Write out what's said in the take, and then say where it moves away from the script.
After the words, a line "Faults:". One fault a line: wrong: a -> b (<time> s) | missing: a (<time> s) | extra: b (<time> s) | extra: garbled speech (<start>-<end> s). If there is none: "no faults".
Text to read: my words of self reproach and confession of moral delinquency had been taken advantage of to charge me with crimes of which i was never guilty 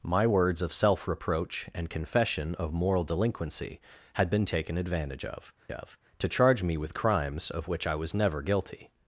my words of self reproach and confession of moral delinquency had been taken advantage of of to charge me with crimes of which i was never guilty
Faults:
extra: of (5.7 s)